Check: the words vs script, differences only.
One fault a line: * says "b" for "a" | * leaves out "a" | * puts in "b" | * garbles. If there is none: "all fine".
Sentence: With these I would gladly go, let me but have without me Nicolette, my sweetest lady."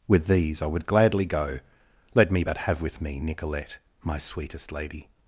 * says "with" for "without"